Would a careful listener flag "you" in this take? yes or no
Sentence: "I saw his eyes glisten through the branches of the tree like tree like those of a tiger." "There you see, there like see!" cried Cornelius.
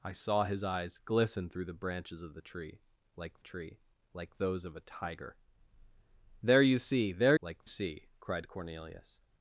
no